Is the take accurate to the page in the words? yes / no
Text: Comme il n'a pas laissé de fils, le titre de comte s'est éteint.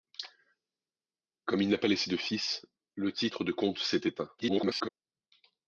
no